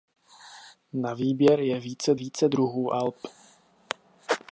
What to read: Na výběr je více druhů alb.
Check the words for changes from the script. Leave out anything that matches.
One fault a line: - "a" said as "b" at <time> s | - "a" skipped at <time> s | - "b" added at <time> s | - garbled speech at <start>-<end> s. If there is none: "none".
- "více" added at 2.1 s